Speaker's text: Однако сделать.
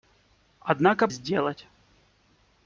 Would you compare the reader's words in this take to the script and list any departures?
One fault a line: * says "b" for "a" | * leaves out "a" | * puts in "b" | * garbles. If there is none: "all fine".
all fine